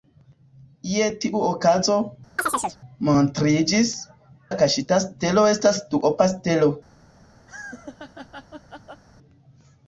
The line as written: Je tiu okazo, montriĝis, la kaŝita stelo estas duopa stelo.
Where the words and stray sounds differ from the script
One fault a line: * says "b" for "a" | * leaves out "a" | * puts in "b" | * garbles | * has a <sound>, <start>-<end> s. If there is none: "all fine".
* has a chirp, 2.4-2.8 s
* has a laugh, 7.5-9.0 s